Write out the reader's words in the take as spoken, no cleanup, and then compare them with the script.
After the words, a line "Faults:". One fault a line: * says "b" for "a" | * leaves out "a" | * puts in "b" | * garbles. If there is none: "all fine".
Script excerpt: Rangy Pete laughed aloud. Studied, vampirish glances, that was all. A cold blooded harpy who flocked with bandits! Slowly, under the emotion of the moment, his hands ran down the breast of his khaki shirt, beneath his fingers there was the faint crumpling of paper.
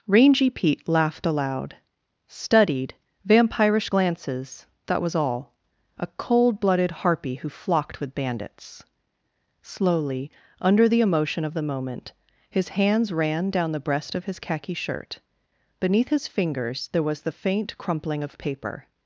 Rangy Pete laughed aloud. Studied, vampirish glances, that was all. A cold blooded harpy who flocked with bandits! Slowly, under the emotion of the moment, his hands ran down the breast of his khaki shirt, beneath his fingers there was the faint crumpling of paper.
Faults:
all fine